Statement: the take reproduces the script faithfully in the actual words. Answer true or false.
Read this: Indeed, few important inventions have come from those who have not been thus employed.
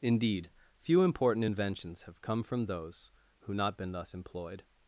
false